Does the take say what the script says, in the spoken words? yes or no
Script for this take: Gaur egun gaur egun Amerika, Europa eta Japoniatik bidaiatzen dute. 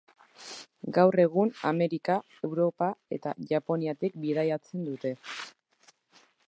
no